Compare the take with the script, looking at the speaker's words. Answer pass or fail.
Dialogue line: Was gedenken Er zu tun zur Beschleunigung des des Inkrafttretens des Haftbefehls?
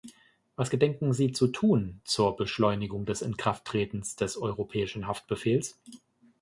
fail